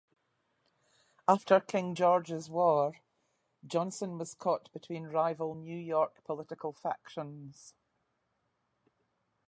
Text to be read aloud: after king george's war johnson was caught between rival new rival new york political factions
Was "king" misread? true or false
false